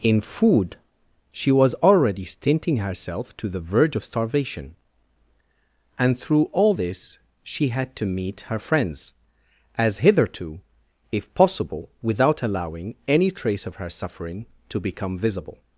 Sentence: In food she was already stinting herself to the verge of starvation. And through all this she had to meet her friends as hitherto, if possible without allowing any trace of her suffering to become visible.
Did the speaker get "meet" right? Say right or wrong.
right